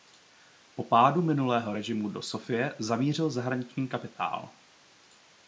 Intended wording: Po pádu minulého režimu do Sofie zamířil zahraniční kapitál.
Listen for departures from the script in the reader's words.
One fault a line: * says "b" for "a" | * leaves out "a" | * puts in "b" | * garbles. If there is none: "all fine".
all fine